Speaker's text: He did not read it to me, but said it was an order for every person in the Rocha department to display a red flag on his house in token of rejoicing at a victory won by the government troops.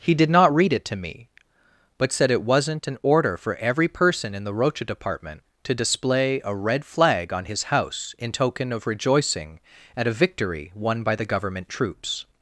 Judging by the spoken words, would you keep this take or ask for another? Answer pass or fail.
fail